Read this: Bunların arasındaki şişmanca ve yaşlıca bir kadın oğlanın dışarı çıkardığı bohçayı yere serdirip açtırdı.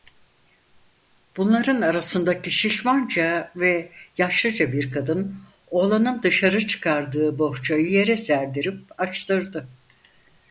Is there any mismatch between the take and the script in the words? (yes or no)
no